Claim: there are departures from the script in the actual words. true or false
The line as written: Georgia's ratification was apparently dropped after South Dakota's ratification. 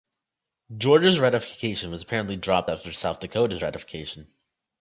false